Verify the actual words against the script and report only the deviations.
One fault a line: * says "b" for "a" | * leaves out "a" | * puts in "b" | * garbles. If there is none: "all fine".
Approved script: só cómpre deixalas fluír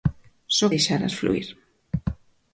* leaves out "cómpre"